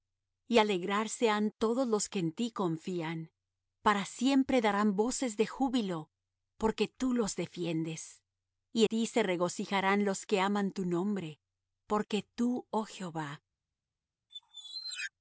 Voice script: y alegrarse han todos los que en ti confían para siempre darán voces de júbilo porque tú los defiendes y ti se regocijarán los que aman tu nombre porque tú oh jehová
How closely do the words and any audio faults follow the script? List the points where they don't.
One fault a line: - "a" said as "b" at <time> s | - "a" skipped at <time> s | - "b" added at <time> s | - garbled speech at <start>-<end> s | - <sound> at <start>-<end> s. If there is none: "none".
- squeak at 14.3-15.1 s